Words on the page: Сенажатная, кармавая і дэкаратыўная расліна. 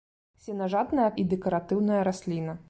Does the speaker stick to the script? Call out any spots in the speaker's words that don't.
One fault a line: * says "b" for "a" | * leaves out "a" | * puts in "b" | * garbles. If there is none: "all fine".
* leaves out "кармавая"